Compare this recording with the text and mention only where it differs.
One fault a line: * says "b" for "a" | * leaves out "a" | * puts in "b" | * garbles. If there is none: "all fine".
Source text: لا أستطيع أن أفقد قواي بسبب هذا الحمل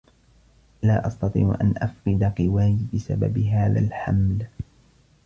all fine